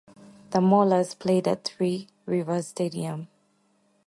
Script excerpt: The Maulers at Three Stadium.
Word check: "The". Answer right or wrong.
right